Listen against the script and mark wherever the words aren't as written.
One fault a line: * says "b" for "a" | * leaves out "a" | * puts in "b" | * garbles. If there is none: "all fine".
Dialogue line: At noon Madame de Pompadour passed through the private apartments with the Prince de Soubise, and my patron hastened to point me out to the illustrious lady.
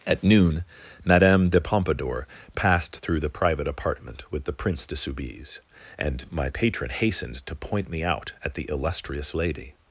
* says "apartment" for "apartments"
* says "at" for "to"